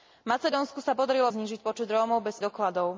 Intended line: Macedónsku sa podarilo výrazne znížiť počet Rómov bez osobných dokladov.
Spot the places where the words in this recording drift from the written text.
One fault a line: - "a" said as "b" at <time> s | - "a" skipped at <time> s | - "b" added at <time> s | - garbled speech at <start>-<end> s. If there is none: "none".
- "výrazne" skipped at 1.3 s
- "osobných" skipped at 2.4 s